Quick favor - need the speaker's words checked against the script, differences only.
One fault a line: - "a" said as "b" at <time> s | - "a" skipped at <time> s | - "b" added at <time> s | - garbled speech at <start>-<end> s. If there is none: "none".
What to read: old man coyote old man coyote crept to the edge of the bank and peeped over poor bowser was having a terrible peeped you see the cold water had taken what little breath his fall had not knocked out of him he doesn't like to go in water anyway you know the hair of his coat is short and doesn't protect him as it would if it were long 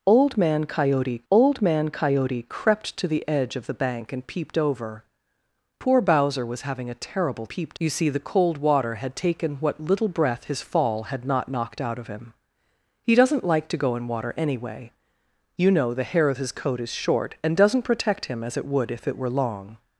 none